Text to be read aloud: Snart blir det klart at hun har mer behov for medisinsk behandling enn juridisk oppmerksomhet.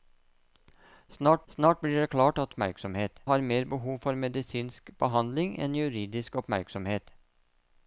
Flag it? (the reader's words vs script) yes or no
yes